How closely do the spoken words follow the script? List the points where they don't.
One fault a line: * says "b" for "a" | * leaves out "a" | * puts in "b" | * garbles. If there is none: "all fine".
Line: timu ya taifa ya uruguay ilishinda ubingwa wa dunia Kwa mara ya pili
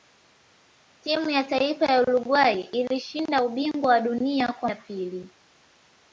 * leaves out "mara"